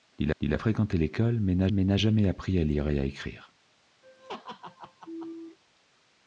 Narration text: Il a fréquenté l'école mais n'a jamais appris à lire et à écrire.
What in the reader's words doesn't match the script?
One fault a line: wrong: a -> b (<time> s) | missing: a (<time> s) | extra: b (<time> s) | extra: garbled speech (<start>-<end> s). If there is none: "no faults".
extra: il (0.4 s)
extra: mais n'a (1.7 s)